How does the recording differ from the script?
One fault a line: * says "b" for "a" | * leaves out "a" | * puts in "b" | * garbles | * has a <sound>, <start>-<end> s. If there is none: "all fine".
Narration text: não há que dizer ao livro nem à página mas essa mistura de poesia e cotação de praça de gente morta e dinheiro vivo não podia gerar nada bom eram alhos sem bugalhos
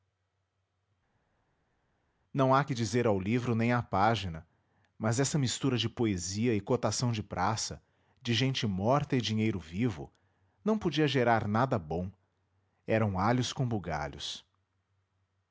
* says "com" for "sem"